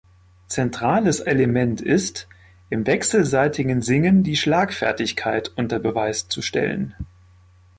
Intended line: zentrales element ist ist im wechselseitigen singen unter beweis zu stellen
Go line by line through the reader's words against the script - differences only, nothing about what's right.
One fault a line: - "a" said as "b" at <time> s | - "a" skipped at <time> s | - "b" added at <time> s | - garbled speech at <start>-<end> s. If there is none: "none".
- "ist" skipped at 2.3 s
- "die schlagfertigkeit" added at 4.2 s